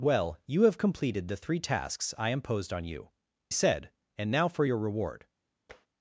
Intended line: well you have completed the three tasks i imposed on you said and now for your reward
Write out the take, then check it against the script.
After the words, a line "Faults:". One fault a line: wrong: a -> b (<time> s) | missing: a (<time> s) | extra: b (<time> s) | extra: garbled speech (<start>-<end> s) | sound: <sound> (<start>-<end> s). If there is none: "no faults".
well you have completed the three tasks i imposed on you said and now for your reward
Faults:
sound: tap (5.7-5.9 s)